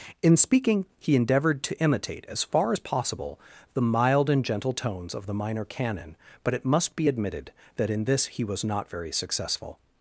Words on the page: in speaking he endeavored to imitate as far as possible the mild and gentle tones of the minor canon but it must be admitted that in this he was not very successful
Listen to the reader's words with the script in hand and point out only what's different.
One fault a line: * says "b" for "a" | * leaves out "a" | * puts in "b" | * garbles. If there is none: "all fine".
all fine